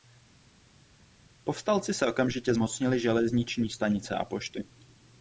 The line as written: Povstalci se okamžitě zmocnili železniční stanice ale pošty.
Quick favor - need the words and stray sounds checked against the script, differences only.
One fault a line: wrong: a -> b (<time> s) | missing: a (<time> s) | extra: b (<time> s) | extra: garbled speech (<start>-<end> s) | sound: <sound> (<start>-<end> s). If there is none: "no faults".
wrong: ale -> a (4.1 s)